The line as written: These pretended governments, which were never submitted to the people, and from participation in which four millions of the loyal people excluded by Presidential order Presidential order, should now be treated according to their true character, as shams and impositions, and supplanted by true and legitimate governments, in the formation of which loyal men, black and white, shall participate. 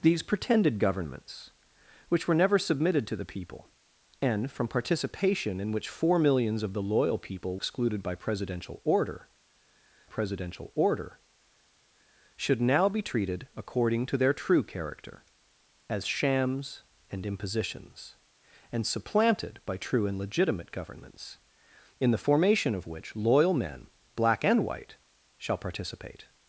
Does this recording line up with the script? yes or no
yes